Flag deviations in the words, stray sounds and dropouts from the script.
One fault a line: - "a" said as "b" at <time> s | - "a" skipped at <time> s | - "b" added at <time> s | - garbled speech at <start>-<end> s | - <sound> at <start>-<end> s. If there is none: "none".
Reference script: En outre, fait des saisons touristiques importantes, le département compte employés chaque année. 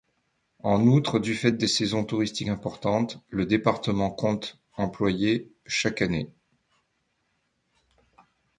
- "du" added at 1.2 s